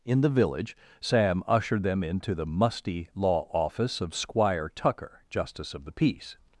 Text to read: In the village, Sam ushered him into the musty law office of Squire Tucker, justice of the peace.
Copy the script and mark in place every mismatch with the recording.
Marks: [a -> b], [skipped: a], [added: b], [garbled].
In the village, Sam ushered [him -> them] into the musty law office of Squire Tucker, justice of the peace.